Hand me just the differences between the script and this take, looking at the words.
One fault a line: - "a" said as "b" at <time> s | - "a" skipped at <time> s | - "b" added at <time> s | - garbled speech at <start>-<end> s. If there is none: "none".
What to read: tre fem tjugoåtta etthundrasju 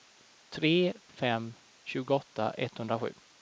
none